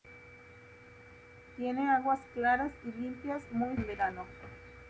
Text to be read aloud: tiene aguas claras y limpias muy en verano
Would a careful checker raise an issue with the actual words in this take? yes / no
no